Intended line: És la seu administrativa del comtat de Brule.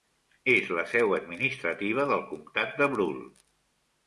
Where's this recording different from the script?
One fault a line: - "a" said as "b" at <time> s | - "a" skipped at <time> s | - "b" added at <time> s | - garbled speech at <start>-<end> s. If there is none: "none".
none